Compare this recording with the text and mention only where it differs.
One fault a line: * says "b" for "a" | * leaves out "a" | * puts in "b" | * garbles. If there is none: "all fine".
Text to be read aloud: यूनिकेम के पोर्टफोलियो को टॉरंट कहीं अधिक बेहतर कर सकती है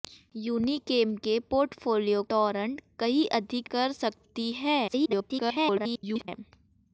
* leaves out "को"
* leaves out "बेहतर"
* garbles